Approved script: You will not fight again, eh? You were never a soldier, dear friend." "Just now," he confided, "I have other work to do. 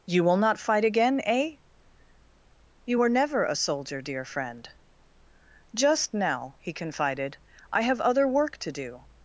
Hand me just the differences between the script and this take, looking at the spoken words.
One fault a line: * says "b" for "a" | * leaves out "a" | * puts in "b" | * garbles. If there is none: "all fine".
all fine